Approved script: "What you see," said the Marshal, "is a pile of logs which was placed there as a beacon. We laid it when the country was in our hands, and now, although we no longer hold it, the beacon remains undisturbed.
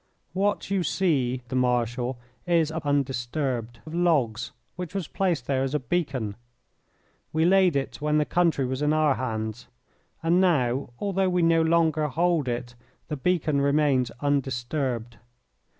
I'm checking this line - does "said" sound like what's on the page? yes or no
no